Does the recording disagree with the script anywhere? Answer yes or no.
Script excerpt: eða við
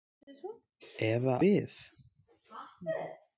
no